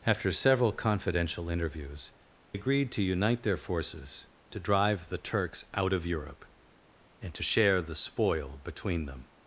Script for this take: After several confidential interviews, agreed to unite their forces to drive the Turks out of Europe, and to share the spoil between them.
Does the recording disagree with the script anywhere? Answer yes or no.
no